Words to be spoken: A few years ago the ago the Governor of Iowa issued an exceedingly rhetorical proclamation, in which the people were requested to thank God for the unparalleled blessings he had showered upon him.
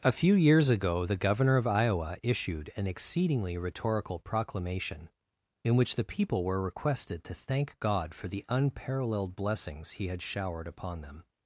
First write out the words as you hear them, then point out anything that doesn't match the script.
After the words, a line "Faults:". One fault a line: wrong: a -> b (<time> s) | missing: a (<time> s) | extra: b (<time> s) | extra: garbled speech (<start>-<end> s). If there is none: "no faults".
A few years ago the Governor of Iowa issued an exceedingly rhetorical proclamation, in which the people were requested to thank God for the unparalleled blessings he had showered upon them.
Faults:
missing: ago the (1.2 s)
wrong: him -> them (11.0 s)